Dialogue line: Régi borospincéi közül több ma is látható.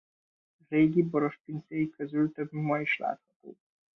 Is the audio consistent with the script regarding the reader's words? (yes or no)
yes